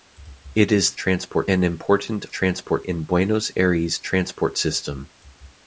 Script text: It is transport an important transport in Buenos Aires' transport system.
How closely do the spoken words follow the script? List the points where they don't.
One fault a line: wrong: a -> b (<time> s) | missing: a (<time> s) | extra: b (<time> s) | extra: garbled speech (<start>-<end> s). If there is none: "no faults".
no faults